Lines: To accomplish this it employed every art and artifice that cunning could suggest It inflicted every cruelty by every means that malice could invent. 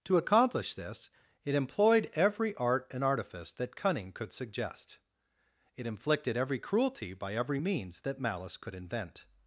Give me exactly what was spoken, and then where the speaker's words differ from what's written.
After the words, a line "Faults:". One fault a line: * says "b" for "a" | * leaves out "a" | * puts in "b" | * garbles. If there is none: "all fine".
To accomplish this it employed every art and artifice that cunning could suggest It inflicted every cruelty by every means that malice could invent.
Faults:
all fine